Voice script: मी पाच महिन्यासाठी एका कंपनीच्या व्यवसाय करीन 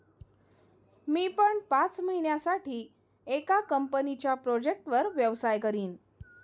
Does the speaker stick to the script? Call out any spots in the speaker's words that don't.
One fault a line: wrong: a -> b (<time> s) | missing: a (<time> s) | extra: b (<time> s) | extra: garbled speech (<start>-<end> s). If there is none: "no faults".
extra: पण (1.3 s)
extra: प्रोजेक्टवर (4.3 s)